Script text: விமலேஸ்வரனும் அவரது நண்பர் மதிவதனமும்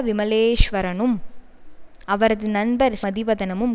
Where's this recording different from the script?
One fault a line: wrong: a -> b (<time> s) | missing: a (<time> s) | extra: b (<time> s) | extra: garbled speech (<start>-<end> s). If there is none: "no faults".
no faults